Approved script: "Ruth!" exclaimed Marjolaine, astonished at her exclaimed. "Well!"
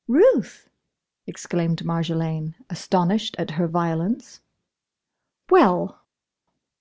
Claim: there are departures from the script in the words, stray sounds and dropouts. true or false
true